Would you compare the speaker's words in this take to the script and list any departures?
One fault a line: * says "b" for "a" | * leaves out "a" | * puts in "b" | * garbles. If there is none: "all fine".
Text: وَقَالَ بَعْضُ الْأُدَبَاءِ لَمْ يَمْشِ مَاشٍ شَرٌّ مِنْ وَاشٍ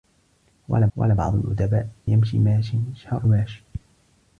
* puts in "وَقَالَ"
* leaves out "لَمْ"
* leaves out "مِنْ"